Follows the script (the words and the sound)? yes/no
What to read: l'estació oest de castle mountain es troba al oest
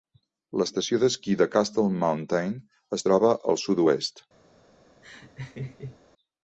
no